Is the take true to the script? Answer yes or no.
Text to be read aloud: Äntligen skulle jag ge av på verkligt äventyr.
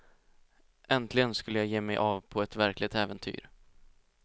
no